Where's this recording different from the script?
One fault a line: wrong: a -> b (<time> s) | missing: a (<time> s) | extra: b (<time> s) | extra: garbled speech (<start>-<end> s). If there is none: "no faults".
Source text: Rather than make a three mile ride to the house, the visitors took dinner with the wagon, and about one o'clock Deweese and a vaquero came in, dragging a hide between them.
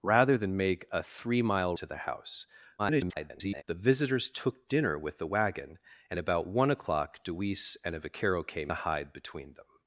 missing: ride (1.8 s)
extra: garbled speech (2.8-3.6 s)
missing: in dragging (8.7 s)